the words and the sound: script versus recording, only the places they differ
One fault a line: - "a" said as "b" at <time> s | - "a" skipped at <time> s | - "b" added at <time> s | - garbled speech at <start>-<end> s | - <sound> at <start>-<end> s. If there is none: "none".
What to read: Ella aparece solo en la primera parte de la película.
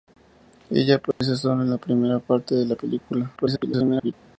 - dropout at 1.1-1.2 s
- garbled speech at 3.4-4.1 s